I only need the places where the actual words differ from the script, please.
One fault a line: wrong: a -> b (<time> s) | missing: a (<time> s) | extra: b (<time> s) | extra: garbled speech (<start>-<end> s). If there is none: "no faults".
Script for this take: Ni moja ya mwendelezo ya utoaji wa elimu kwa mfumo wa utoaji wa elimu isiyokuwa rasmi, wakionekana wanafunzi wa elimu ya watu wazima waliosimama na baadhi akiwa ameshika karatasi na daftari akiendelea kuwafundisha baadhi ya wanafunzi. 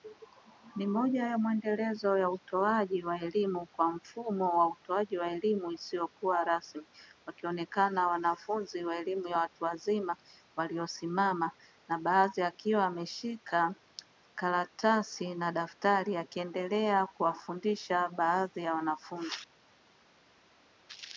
no faults